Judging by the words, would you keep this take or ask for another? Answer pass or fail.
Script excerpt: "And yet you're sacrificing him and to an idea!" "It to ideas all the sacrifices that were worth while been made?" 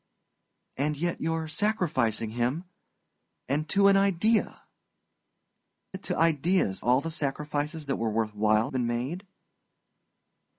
pass